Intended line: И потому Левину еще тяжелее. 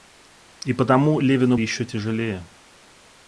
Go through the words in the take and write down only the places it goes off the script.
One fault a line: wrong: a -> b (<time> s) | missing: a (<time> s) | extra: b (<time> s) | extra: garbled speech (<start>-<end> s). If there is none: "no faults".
no faults